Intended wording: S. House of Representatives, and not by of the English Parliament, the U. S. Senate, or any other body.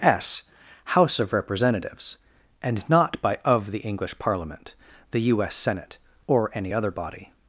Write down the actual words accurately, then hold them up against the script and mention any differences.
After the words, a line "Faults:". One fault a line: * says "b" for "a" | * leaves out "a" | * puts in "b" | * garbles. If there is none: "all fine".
S. House of Representatives, and not by of the English Parliament, the U. S. Senate, or any other body.
Faults:
all fine